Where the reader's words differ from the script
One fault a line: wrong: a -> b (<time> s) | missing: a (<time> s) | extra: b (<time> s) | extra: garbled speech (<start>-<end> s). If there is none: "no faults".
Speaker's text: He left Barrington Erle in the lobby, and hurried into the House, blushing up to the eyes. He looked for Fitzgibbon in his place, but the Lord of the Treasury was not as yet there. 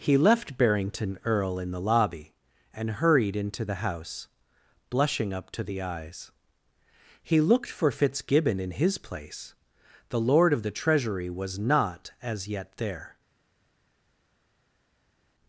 missing: but (9.5 s)